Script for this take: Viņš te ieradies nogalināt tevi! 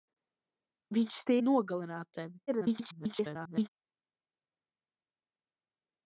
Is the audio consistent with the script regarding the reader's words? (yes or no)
no